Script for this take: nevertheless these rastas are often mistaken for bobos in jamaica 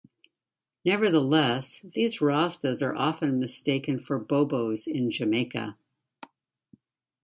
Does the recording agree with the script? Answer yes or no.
yes